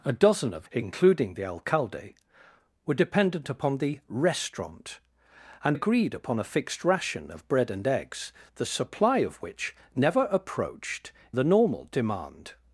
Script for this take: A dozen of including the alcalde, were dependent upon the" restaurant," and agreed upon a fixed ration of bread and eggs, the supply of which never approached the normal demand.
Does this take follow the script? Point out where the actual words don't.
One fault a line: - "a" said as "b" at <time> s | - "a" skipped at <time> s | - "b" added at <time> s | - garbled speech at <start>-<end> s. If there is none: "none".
none